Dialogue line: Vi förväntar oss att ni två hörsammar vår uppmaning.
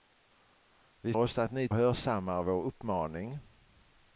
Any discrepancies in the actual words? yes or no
yes